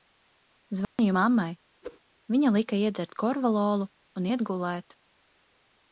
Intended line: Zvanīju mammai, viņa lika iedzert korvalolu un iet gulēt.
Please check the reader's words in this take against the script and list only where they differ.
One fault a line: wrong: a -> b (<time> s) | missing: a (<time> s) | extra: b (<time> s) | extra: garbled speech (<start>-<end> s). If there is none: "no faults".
no faults